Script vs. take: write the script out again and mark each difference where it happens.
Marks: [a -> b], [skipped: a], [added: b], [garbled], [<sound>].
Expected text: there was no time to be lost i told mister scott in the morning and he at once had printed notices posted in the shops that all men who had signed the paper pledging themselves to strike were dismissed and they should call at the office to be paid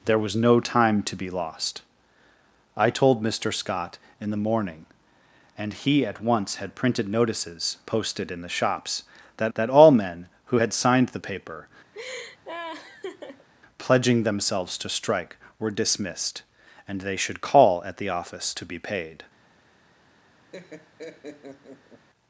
there was no time to be lost i told mister scott in the morning and he at once had printed notices posted in the shops that [added: that] all men who had signed the paper [laugh] pledging themselves to strike were dismissed and they should call at the office to be paid [laugh]